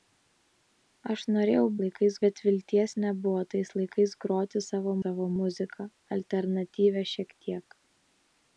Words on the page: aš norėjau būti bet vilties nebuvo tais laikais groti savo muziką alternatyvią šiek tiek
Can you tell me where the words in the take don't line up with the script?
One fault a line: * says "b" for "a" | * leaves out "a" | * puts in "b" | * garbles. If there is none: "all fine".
* says "laikais" for "būti"
* puts in "savo"